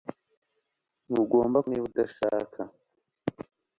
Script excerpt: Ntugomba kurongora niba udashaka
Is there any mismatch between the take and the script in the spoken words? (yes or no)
yes